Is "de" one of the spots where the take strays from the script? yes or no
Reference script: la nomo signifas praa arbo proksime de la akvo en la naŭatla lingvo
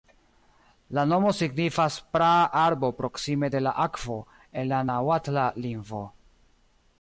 no